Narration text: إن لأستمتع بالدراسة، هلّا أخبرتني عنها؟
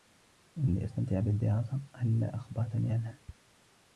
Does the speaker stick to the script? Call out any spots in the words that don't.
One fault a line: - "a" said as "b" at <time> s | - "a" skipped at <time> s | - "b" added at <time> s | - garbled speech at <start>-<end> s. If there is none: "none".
none